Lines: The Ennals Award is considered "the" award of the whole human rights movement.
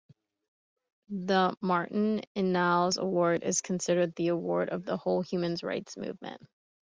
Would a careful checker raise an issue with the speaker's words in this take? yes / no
yes